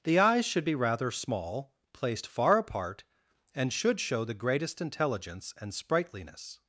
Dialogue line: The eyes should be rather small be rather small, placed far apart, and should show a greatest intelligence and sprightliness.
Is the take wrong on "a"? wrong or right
wrong